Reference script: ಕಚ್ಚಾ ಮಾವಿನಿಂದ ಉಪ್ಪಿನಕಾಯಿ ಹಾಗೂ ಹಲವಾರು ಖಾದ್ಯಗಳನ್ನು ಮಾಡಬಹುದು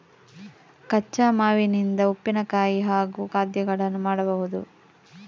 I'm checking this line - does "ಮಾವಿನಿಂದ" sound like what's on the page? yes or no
yes